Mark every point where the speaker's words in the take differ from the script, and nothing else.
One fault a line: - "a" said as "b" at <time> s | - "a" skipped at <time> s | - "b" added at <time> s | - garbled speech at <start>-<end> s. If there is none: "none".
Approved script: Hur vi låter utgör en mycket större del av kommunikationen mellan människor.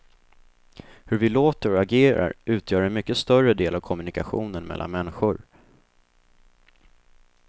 - "och agerar" added at 1.7 s